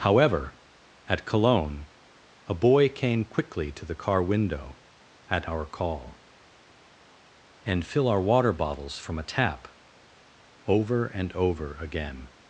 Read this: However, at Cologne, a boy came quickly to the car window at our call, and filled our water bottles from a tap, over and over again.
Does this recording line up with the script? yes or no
no